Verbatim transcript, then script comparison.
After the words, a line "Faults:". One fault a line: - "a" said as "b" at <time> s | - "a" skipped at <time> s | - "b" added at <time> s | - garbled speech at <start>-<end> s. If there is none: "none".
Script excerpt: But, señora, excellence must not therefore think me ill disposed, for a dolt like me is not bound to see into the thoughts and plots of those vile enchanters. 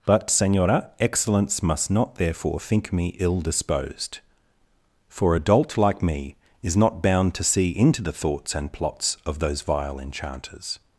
But, señora, excellence must not therefore think me ill disposed, for a dolt like me is not bound to see into the thoughts and plots of those vile enchanters.
Faults:
none